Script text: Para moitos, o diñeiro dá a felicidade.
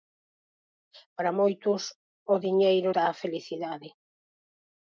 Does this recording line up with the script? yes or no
yes